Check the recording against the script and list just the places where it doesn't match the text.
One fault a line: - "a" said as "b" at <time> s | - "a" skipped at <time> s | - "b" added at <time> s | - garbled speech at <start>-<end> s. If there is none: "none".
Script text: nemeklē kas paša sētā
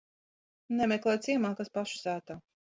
- "ciemā" added at 1.3 s